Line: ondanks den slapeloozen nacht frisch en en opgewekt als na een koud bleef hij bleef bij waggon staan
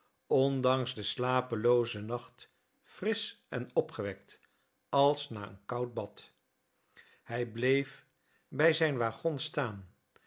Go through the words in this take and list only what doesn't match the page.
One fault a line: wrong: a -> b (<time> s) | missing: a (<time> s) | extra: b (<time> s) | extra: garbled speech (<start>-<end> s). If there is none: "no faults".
missing: en (3.7 s)
wrong: bleef -> bad (5.9 s)
extra: zijn (8.7 s)